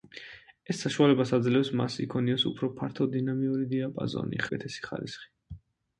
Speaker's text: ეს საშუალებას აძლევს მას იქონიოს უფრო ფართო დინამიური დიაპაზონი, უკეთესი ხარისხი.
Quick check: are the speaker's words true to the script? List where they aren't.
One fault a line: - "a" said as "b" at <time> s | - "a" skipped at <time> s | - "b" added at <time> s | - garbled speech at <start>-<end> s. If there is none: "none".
none